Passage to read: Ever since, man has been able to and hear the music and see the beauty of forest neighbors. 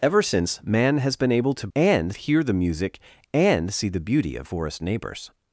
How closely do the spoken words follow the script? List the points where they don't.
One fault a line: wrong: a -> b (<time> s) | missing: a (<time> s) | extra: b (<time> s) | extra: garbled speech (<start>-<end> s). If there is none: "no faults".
no faults